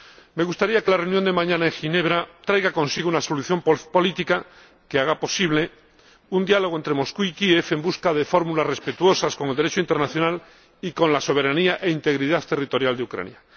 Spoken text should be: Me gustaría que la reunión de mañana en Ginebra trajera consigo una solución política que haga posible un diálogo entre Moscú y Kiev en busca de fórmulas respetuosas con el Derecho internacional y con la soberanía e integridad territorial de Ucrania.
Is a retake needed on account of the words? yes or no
no